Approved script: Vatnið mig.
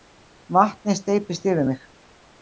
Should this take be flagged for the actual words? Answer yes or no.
yes